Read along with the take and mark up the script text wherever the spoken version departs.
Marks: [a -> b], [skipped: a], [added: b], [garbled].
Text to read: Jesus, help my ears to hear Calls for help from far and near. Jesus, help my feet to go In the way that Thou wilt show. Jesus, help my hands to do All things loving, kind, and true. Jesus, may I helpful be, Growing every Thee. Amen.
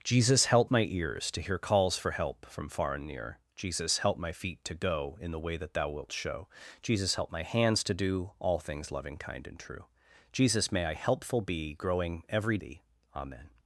Jesus, help my ears to hear Calls for help from far and near. Jesus, help my feet to go In the way that Thou wilt show. Jesus, help my hands to do All things loving, kind, and true. Jesus, may I helpful be, Growing every Thee. Amen.